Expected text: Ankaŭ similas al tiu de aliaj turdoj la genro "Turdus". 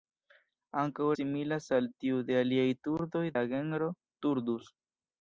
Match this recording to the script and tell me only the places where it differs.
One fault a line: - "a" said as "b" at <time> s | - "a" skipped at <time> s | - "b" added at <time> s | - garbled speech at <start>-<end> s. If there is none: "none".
none